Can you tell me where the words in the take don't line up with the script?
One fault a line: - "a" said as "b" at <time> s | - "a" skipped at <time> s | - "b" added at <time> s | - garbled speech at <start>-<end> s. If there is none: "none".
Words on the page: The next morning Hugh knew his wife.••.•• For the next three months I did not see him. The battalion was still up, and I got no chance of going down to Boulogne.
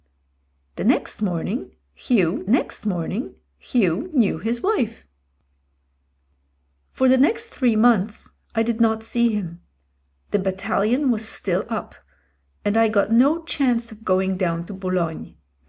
- "next morning Hugh" added at 2.5 s